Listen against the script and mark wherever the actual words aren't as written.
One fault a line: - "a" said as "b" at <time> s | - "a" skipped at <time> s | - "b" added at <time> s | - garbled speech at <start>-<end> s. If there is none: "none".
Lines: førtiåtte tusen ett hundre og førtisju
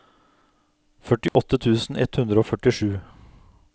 none